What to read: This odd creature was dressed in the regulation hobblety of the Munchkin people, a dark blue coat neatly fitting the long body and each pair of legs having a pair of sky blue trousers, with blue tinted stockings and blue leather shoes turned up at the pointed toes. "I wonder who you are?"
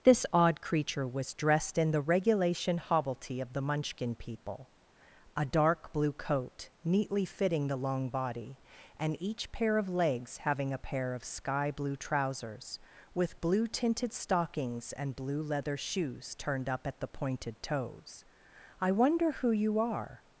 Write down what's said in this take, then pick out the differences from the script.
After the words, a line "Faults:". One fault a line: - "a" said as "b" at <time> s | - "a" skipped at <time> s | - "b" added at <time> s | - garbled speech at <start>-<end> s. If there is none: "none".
This odd creature was dressed in the regulation hobblety of the Munchkin people, a dark blue coat neatly fitting the long body and each pair of legs having a pair of sky blue trousers, with blue tinted stockings and blue leather shoes turned up at the pointed toes. "I wonder who you are?"
Faults:
none